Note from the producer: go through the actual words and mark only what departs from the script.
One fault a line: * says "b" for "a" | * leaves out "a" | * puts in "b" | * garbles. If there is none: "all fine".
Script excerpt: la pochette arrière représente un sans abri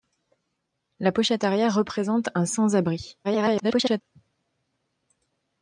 * garbles